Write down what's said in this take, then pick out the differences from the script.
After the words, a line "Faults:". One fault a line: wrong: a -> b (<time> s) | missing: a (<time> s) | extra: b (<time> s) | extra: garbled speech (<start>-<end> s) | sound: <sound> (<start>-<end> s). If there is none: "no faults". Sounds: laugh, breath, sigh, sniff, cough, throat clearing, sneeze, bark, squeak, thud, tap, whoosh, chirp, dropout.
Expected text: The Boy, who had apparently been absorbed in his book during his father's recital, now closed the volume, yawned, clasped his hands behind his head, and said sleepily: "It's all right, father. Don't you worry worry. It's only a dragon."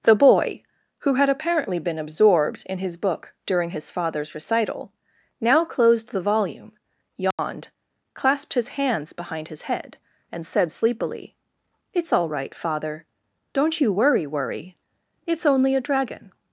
The Boy, who had apparently been absorbed in his book during his father's recital, now closed the volume, yawned, clasped his hands behind his head, and said sleepily: "It's all right, father. Don't you worry worry. It's only a dragon."
Faults:
sound: dropout (7.3-7.4 s)